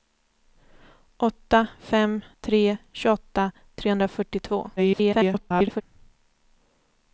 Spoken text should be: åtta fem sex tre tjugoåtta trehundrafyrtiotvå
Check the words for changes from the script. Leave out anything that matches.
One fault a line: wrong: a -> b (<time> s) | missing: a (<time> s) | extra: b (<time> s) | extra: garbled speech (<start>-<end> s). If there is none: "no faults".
missing: sex (2.2 s)
extra: garbled speech (4.8-5.8 s)